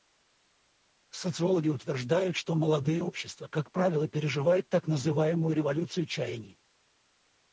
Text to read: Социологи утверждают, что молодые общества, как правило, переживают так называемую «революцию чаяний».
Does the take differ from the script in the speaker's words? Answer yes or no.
no